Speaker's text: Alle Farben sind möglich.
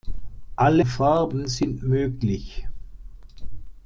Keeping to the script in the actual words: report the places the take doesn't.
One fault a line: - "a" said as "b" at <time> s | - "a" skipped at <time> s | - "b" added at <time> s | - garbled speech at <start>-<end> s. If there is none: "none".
none